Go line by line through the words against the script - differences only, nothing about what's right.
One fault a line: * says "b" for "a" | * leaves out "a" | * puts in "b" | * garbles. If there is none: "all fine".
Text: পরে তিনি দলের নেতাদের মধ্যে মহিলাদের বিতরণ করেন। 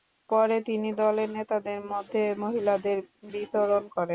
all fine